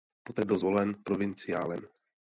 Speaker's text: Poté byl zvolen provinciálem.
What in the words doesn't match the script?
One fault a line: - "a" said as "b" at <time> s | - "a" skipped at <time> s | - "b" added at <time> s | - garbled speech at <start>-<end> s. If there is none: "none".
none